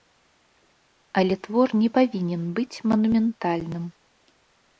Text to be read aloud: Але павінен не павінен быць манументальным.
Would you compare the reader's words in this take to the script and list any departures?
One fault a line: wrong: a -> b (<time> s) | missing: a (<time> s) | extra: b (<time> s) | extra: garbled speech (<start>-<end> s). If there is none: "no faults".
wrong: павінен -> твор (1.5 s)